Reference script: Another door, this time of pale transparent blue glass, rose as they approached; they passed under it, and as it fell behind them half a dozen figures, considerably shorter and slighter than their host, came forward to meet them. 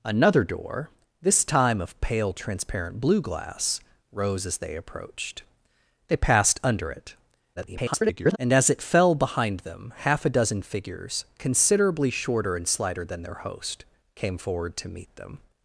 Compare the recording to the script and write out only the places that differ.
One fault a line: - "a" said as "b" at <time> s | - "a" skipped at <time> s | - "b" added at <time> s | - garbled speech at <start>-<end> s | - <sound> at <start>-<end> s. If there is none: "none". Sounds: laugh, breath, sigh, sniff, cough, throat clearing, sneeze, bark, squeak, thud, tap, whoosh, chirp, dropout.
- garbled speech at 7.6-8.4 s